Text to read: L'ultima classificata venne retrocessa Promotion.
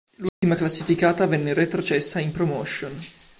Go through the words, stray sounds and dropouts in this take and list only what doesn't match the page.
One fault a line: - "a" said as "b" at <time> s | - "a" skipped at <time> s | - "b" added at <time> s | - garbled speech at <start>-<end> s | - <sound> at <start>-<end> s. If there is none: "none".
- dropout at 0.3-0.4 s
- "in" added at 2.2 s